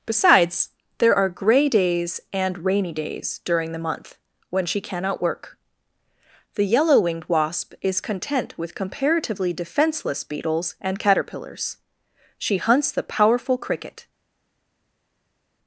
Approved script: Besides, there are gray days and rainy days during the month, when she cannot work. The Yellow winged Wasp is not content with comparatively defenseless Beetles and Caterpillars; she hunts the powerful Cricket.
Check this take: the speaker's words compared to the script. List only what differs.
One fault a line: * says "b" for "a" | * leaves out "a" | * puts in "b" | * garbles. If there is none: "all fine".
* leaves out "not"